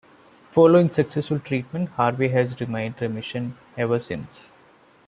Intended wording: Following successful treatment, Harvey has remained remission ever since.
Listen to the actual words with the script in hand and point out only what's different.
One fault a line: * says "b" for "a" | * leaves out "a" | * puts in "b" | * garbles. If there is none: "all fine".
all fine